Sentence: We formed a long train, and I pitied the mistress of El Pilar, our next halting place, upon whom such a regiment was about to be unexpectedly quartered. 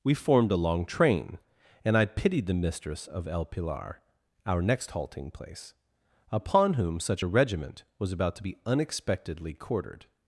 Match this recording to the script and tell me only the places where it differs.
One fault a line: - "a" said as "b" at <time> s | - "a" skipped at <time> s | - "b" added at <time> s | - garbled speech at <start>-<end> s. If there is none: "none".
none